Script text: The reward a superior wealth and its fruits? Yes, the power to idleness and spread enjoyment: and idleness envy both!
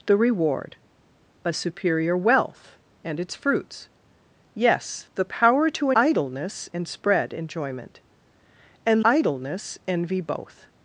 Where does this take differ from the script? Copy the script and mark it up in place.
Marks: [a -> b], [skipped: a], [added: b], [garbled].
The reward a superior wealth and its fruits? Yes, the power to idleness and spread enjoyment: and idleness envy both!